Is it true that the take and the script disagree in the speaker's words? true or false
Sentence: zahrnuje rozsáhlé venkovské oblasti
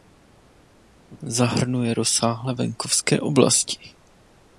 false